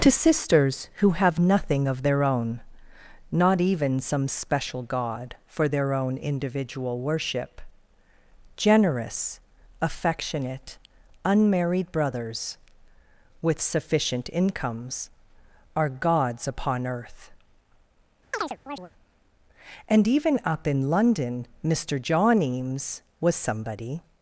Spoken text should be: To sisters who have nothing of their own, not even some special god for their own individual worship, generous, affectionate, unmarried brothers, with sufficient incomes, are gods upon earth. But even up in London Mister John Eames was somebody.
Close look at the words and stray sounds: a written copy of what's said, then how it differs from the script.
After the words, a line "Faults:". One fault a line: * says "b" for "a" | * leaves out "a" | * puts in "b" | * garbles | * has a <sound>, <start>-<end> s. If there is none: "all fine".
To sisters who have nothing of their own, not even some special god for their own individual worship, generous, affectionate, unmarried brothers, with sufficient incomes, are gods upon earth. And even up in London Mister John Eames was somebody.
Faults:
* has a chirp, 18.3-18.9 s
* says "And" for "But"